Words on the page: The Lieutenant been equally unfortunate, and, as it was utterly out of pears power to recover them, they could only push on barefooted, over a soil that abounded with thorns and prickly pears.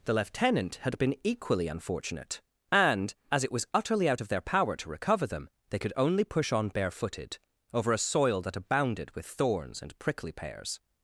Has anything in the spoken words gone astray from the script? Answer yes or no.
yes